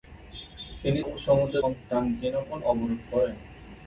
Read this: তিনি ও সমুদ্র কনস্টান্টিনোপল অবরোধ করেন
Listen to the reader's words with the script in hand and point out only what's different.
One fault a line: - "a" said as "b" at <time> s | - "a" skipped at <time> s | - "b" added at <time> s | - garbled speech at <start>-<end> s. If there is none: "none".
none